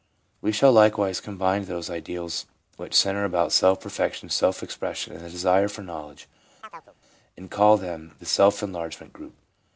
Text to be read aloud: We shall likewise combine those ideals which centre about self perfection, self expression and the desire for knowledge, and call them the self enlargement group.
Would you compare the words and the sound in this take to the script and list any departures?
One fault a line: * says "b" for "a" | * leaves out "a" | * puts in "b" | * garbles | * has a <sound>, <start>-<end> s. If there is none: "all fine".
* has a chirp, 6.6-6.9 s